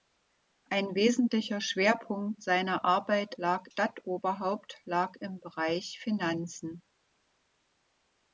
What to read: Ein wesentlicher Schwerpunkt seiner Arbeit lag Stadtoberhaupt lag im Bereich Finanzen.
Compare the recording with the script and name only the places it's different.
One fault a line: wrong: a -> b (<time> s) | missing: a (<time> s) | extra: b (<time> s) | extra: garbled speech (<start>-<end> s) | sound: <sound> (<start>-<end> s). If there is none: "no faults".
no faults